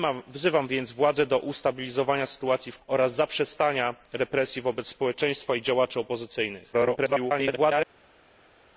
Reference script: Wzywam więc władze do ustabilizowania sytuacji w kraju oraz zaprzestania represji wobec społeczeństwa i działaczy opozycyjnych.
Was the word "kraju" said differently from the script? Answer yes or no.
yes